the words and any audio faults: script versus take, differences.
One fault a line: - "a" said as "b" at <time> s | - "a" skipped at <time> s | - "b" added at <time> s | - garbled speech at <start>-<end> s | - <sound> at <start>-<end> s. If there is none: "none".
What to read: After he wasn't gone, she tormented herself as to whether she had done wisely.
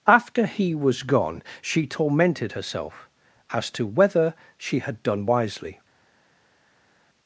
- "wasn't" said as "was" at 0.7 s